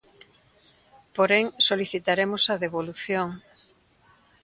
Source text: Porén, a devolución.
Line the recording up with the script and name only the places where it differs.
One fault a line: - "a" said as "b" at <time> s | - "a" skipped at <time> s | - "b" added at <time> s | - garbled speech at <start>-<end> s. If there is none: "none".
- "solicitaremos" added at 1.7 s